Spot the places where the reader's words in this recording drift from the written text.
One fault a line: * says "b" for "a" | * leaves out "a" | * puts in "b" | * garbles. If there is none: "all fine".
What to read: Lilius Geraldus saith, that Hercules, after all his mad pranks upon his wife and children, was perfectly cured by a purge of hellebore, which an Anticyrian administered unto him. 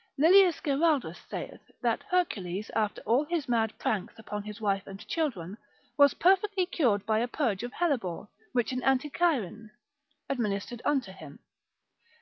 all fine